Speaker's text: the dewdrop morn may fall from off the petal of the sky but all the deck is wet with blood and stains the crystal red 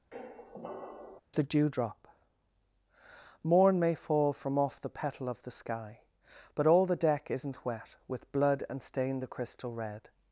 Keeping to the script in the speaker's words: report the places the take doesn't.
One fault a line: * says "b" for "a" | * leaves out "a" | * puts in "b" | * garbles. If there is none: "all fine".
* says "isn't" for "is"
* says "stain" for "stains"